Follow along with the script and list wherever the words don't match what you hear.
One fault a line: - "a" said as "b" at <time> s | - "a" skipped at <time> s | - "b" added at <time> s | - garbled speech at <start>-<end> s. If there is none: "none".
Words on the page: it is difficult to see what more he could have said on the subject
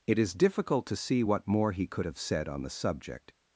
none